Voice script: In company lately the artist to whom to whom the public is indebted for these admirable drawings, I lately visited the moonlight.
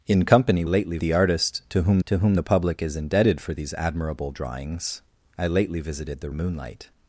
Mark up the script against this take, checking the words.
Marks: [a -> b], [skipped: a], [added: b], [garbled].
In company lately the artist to whom to whom the public is indebted for these admirable drawings, I lately visited the moonlight.